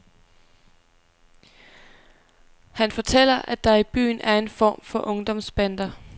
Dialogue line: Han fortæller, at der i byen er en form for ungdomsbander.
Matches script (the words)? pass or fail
pass